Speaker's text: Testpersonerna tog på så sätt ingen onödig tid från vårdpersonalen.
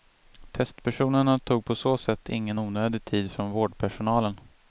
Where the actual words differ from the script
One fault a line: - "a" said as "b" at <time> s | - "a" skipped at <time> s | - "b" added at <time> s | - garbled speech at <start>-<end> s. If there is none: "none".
none